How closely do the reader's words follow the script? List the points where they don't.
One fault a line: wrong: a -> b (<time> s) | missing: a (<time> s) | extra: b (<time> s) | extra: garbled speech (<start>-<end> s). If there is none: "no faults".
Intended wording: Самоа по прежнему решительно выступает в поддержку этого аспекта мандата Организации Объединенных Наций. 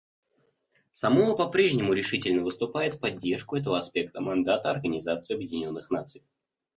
no faults